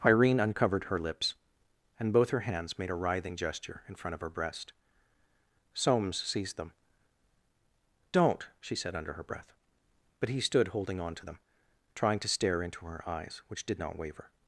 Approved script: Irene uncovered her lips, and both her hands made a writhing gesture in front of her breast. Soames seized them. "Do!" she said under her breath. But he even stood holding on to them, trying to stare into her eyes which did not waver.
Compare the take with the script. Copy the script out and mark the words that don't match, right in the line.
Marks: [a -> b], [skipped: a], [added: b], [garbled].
Irene uncovered her lips, and both her hands made a writhing gesture in front of her breast. Soames seized them. ["Do!" -> Don't] she said under her breath. But he [skipped: even] stood holding on to them, trying to stare into her eyes which did not waver.